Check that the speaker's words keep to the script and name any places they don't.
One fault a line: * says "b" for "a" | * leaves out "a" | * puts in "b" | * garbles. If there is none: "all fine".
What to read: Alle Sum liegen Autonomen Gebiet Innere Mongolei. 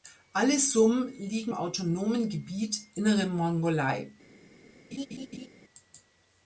all fine